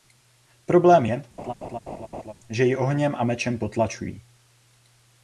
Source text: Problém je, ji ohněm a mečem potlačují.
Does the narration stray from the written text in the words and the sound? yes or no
yes